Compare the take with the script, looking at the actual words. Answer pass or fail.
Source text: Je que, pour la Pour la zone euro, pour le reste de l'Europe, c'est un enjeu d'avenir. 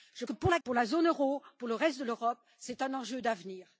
pass